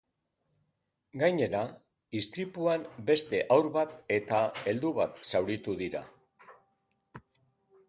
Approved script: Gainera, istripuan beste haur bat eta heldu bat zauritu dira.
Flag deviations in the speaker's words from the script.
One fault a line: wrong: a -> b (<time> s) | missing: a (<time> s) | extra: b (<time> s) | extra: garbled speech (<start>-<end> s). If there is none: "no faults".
no faults